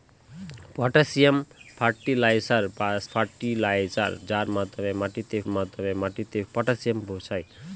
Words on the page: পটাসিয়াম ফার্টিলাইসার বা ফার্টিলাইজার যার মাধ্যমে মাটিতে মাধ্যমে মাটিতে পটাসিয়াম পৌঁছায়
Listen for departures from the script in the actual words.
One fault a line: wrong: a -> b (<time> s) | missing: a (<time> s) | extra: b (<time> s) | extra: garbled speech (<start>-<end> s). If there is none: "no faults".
no faults